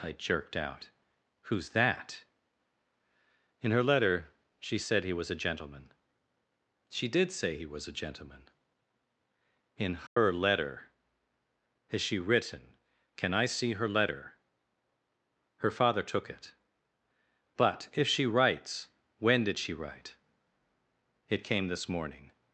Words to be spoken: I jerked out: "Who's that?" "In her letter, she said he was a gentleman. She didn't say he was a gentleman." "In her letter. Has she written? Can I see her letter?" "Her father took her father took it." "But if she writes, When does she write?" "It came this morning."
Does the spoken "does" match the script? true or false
false